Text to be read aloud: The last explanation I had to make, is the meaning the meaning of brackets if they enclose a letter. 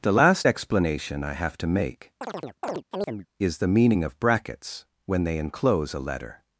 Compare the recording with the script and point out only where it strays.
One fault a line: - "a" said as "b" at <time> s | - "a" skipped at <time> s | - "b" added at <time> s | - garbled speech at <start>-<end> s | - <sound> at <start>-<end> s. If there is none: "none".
- "had" said as "have" at 1.3 s
- chirp at 2.2-3.3 s
- "the meaning" skipped at 4.0 s
- "if" said as "when" at 5.1 s